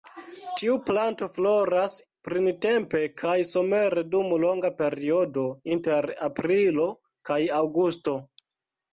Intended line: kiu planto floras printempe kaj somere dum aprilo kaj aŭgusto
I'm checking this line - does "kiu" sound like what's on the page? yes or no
no